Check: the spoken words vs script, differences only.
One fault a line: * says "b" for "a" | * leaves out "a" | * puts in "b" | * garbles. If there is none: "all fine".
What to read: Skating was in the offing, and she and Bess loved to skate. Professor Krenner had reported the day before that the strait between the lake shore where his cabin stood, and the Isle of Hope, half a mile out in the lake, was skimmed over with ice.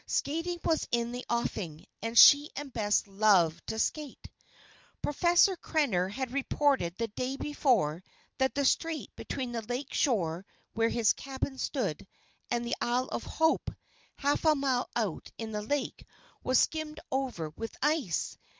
all fine